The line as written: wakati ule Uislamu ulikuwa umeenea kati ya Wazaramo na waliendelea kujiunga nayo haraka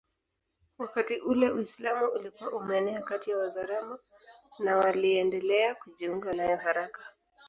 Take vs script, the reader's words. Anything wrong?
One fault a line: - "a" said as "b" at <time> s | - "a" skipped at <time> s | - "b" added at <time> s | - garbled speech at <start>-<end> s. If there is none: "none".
none